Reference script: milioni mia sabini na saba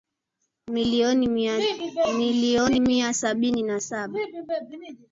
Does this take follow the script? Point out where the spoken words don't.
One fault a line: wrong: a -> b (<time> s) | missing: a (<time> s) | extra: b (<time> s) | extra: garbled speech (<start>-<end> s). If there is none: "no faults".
no faults